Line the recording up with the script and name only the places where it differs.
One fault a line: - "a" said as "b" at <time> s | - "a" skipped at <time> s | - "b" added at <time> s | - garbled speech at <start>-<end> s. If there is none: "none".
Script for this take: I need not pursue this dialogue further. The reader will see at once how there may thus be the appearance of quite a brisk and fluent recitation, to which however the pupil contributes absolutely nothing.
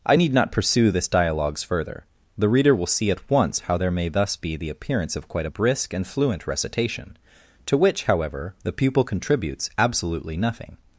- "dialogue" said as "dialogues" at 1.1 s